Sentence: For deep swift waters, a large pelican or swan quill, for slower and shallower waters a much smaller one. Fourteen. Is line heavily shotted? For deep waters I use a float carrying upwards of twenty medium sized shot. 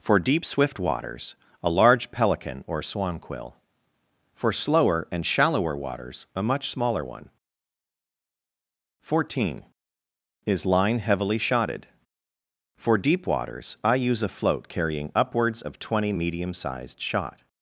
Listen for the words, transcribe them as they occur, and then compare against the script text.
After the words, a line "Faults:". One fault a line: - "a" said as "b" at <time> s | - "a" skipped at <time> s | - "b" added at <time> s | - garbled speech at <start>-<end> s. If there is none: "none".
For deep swift waters, a large pelican or swan quill, for slower and shallower waters a much smaller one. Fourteen. Is line heavily shotted? For deep waters I use a float carrying upwards of twenty medium sized shot.
Faults:
none